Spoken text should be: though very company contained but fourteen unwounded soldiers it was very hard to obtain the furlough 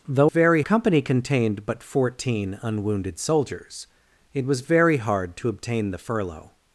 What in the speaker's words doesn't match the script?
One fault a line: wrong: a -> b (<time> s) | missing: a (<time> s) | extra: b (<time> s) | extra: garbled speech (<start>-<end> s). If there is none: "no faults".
no faults